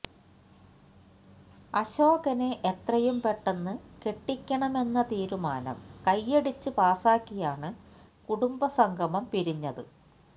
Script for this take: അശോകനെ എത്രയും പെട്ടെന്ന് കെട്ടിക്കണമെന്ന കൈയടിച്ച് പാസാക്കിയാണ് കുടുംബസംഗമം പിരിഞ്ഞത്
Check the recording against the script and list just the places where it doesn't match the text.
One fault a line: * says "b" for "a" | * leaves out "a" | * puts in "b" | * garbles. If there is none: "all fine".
* puts in "തീരുമാനം"